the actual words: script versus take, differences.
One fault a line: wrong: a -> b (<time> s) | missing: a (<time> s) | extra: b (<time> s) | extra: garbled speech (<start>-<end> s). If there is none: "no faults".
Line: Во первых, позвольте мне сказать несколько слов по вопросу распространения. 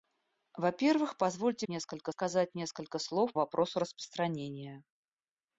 wrong: мне -> несколько (1.7 s)
missing: по (3.3 s)